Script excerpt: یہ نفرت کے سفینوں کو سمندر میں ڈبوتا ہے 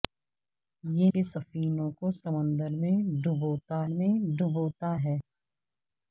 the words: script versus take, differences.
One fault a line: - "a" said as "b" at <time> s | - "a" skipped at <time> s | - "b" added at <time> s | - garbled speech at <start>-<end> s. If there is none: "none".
- "نفرت" skipped at 1.1 s
- "میں ڈبوتا" added at 3.9 s